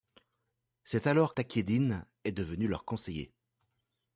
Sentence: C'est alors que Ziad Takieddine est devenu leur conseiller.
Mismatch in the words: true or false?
true